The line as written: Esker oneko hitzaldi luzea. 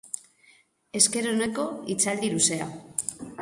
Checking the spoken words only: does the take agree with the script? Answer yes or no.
yes